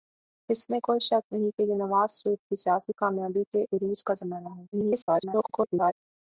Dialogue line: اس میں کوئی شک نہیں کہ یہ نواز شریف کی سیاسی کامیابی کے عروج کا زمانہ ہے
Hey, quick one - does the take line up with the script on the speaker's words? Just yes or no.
no